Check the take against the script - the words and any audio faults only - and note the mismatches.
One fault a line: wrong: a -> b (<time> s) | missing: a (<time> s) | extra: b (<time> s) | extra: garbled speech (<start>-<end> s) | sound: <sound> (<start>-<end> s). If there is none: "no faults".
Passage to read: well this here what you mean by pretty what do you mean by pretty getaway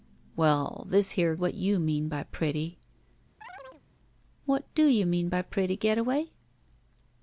sound: chirp (3.4-3.8 s)